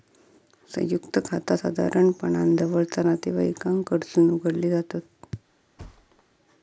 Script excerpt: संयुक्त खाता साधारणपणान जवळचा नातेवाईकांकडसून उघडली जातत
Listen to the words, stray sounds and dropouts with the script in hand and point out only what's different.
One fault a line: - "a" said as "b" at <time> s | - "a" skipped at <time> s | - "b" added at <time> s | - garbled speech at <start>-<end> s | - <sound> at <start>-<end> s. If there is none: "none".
- thud at 5.8-6.2 s